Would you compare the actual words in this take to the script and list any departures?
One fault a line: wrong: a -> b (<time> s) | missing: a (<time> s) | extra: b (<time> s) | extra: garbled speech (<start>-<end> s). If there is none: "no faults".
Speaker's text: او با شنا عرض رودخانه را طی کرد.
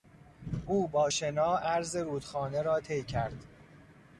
no faults